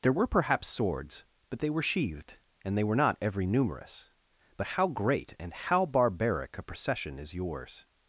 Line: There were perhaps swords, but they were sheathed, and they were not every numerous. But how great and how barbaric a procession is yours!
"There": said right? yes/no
yes